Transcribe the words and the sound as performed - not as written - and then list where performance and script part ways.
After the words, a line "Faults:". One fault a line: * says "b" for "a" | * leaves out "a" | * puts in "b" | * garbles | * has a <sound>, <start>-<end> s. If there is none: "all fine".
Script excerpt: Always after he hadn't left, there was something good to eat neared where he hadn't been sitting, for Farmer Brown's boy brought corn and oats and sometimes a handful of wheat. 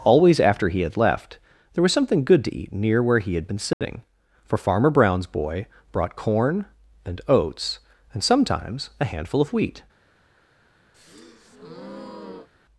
Always after he had left, there was something good to eat near where he had been sitting, for Farmer Brown's boy brought corn and oats and sometimes a handful of wheat.
Faults:
* says "had" for "hadn't"
* says "near" for "neared"
* says "had" for "hadn't"
* has a dropout, 3.7-3.8 s
* has a breath, 10.9-12.5 s